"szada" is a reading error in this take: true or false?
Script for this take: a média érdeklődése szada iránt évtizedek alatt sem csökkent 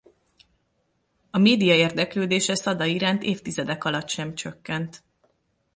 false